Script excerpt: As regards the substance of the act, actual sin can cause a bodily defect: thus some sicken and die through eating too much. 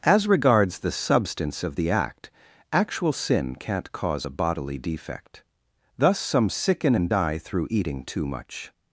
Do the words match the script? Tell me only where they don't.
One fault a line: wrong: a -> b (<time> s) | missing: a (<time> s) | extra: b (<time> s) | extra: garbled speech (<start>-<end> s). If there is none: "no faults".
wrong: can -> can't (3.5 s)